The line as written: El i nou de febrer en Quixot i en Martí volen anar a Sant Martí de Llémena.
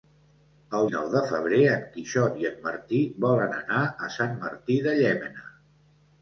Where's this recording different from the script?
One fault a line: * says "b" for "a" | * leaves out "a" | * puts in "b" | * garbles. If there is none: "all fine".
all fine